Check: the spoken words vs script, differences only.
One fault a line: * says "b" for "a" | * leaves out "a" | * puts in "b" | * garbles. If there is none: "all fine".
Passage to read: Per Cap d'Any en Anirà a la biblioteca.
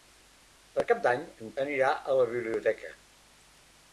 all fine